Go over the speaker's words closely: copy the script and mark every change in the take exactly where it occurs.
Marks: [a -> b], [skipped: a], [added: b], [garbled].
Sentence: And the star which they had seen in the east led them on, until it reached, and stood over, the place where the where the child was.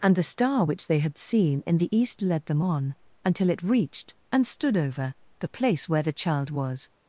And the star which they had seen in the east led them on, until it reached, and stood over, the place where the [skipped: where the] child was.